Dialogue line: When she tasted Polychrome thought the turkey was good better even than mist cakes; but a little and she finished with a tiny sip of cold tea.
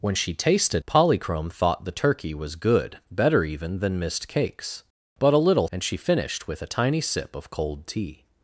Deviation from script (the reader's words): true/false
false